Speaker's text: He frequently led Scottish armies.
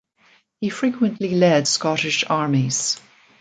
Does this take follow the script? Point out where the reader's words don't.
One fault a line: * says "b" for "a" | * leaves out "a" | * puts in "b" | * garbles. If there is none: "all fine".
all fine